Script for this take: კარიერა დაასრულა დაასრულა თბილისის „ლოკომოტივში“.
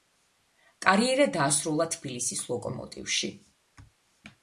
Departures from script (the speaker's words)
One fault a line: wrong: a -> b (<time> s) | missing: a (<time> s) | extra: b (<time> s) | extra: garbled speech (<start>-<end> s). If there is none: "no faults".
missing: დაასრულა (1.9 s)